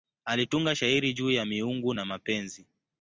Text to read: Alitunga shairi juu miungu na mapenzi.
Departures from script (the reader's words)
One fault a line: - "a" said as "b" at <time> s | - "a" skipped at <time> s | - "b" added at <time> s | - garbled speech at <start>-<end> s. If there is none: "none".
- "ya" added at 1.3 s